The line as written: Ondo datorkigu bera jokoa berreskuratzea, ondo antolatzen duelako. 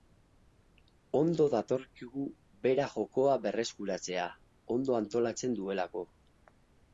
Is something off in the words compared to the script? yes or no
no